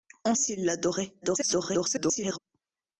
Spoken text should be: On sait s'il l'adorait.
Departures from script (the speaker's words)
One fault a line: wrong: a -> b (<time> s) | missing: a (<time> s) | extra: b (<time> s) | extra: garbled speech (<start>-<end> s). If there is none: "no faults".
missing: sait (0.3 s)
extra: garbled speech (1.2-2.4 s)